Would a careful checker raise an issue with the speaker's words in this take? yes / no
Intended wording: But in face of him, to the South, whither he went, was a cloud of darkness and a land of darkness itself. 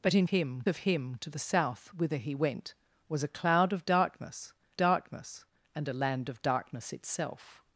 yes